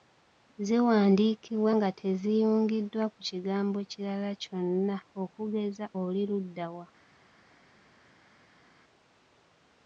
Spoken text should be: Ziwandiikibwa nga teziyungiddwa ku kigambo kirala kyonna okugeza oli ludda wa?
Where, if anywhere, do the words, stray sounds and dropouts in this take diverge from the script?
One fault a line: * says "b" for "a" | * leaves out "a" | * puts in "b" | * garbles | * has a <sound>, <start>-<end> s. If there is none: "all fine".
all fine